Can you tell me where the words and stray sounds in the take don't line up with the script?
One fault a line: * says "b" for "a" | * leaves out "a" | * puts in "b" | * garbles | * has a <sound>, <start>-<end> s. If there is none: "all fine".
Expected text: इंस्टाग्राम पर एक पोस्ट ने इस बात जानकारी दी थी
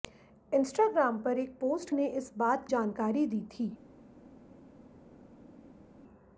all fine